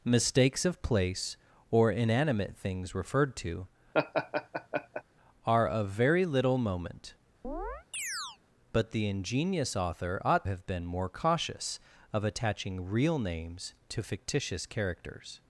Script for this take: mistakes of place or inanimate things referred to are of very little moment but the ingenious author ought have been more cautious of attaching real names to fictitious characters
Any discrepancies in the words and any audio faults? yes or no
yes